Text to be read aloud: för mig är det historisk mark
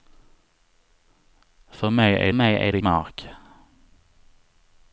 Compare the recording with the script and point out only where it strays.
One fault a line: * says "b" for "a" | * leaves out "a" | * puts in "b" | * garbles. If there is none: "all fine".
* puts in "mig"
* leaves out "historisk"